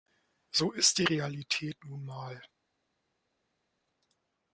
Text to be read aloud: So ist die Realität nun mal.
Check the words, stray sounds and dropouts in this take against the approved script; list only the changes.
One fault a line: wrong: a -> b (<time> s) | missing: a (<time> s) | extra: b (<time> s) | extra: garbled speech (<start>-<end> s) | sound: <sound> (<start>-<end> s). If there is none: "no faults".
no faults